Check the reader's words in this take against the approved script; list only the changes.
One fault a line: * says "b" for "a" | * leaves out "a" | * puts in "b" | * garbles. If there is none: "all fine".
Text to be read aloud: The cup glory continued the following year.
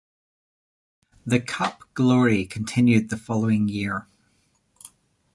all fine